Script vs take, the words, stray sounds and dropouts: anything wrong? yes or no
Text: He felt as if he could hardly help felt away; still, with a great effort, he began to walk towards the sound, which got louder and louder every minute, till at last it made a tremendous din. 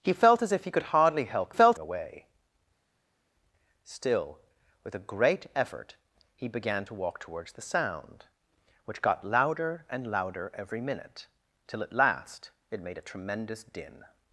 no